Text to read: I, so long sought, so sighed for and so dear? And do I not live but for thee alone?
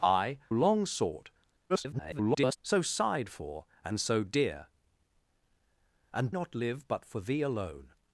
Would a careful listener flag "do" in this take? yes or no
yes